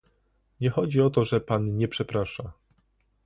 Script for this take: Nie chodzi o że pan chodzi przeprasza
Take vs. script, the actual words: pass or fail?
fail